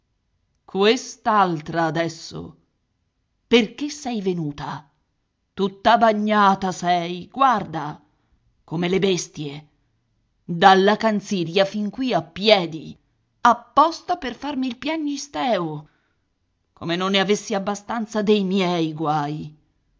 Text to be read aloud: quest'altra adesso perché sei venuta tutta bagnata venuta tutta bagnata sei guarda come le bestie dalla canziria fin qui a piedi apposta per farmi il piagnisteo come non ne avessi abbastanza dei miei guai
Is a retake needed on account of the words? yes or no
yes